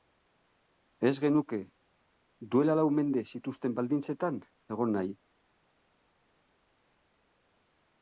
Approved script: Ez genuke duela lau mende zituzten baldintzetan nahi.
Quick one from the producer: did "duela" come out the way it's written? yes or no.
yes